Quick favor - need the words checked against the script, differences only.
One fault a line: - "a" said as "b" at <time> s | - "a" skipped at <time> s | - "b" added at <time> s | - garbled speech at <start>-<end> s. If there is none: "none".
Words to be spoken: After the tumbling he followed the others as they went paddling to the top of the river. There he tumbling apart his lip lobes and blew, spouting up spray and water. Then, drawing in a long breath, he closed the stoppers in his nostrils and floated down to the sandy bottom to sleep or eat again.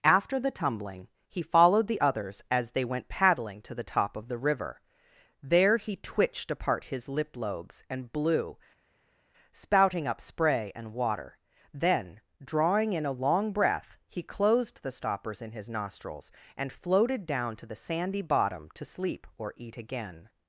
- "tumbling" said as "twitched" at 6.0 s